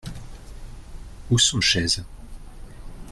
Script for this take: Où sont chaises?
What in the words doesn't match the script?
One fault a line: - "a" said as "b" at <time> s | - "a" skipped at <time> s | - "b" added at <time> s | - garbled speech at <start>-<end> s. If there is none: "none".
none